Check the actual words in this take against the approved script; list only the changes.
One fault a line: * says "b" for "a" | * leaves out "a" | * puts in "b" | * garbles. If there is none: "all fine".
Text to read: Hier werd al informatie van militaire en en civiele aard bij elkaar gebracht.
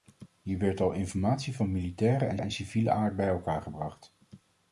all fine